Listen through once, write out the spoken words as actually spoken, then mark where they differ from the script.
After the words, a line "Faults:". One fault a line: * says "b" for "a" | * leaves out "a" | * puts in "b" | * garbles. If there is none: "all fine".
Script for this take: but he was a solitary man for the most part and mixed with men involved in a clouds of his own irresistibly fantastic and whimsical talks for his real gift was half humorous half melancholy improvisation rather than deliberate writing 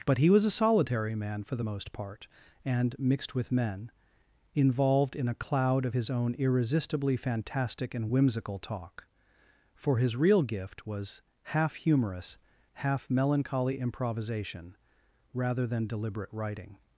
but he was a solitary man for the most part and mixed with men involved in a cloud of his own irresistibly fantastic and whimsical talk for his real gift was half humorous half melancholy improvisation rather than deliberate writing
Faults:
* says "cloud" for "clouds"
* says "talk" for "talks"